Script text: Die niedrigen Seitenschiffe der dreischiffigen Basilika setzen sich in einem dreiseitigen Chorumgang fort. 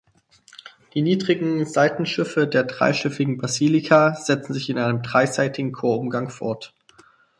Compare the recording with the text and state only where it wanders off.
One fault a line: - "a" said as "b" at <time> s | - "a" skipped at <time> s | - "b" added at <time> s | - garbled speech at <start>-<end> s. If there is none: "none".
none